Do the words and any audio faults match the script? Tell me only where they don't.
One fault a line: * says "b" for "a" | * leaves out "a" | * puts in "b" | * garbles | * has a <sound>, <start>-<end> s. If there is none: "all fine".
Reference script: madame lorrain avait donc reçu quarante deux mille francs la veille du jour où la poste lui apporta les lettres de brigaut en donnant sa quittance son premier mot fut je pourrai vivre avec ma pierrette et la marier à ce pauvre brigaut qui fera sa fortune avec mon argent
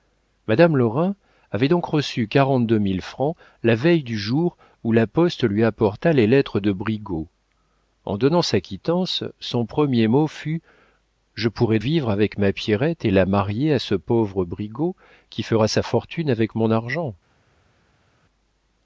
all fine